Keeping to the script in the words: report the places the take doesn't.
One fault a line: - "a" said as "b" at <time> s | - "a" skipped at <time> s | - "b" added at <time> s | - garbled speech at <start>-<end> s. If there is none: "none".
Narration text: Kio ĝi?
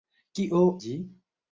none